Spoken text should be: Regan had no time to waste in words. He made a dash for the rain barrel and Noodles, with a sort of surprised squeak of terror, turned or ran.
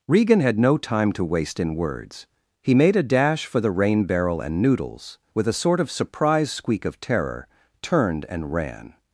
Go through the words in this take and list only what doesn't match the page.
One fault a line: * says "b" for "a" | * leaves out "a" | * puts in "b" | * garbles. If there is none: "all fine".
* says "and" for "or"